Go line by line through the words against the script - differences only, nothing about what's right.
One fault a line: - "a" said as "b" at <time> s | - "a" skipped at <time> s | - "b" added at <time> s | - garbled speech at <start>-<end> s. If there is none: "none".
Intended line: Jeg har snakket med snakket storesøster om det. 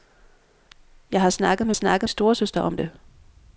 none